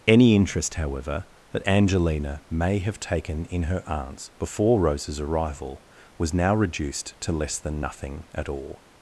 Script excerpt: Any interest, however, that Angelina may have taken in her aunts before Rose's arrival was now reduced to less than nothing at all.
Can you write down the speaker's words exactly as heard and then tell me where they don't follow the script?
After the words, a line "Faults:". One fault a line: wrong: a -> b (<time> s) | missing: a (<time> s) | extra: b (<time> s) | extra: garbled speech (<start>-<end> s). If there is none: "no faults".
Any interest, however, that Angelina may have taken in her aunts before Rose's arrival was now reduced to less than nothing at all.
Faults:
no faults